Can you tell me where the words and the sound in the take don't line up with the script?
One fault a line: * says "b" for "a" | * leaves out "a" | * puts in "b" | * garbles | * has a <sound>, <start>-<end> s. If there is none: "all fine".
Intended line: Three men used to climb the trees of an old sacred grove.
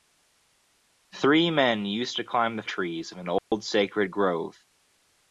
* has a dropout, 3.4-3.5 s